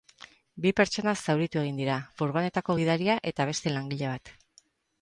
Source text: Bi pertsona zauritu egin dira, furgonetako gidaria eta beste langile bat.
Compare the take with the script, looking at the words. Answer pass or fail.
pass